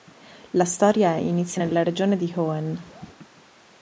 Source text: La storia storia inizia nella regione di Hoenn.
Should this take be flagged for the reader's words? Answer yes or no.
yes